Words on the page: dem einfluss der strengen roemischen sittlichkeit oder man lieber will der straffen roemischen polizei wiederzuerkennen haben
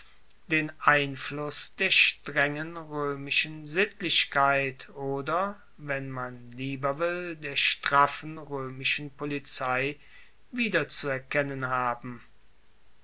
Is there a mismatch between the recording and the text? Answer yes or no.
yes